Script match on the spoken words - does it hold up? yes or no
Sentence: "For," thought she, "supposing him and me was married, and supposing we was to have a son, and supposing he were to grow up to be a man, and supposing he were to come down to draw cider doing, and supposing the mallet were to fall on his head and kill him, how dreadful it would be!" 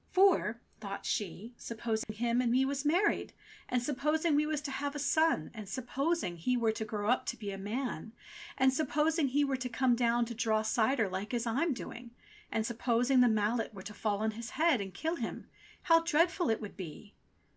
no